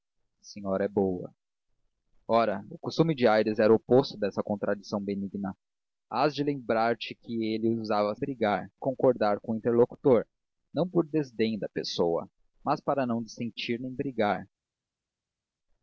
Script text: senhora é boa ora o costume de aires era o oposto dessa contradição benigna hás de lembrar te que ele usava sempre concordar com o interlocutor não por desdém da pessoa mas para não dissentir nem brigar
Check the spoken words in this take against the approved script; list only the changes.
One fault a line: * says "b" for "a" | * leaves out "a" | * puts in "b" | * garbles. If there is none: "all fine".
* says "brigar" for "sempre"